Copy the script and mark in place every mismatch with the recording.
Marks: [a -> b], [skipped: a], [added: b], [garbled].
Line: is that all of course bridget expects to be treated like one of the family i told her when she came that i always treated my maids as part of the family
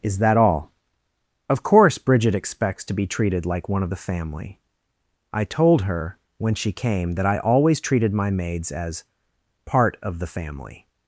is that all of course bridget expects to be treated like one of the family i told her when she came that i always treated my maids as part of the family